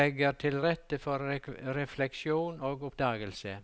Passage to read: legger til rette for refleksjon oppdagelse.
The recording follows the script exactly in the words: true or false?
false